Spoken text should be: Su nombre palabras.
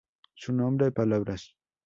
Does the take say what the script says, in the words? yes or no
yes